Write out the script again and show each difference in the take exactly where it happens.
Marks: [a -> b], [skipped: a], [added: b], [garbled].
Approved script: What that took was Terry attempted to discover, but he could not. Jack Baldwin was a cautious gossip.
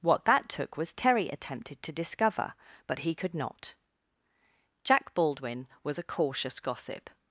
What that took was Terry attempted to discover, but he could not. Jack Baldwin was a cautious gossip.